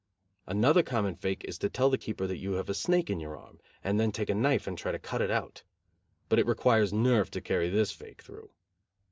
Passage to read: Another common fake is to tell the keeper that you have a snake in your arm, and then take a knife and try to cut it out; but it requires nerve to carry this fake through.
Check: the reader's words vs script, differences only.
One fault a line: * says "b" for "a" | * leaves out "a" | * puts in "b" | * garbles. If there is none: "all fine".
all fine